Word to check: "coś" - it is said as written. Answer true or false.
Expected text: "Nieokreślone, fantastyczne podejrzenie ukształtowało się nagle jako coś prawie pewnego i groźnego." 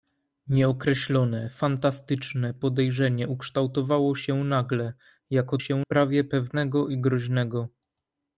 false